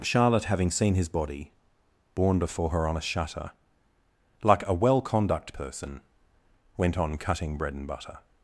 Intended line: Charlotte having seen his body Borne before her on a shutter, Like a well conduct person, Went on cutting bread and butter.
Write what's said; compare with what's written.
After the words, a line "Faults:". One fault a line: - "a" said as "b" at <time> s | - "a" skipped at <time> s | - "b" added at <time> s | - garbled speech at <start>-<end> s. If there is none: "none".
Charlotte having seen his body Borne before her on a shutter, Like a well conduct person, Went on cutting bread and butter.
Faults:
none